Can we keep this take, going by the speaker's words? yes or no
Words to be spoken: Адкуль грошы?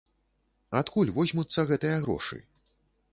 no